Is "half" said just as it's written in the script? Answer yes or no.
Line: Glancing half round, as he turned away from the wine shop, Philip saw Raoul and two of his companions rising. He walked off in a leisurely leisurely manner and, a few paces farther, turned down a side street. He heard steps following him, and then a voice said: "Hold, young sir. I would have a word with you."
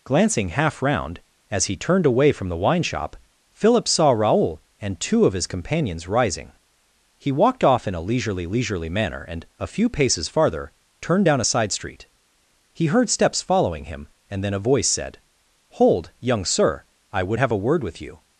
yes